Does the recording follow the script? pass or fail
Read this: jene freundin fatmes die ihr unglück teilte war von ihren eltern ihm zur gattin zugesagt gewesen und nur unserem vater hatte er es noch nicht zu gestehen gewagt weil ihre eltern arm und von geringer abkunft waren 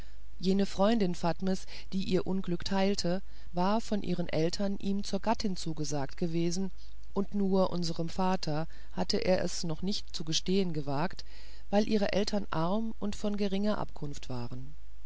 pass